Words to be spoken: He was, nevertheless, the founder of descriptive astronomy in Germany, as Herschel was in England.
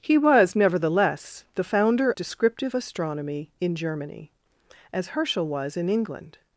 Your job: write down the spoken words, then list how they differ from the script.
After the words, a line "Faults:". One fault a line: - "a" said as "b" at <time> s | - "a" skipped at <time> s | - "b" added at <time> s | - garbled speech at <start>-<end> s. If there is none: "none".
He was, nevertheless, the founder descriptive astronomy in Germany, as Herschel was in England.
Faults:
- "of" skipped at 2.1 s